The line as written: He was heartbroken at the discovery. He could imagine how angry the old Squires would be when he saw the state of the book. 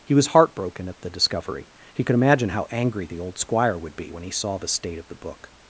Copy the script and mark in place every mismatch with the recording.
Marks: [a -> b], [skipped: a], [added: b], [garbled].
He was heartbroken at the discovery. He could imagine how angry the old [Squires -> Squire] would be when he saw the state of the book.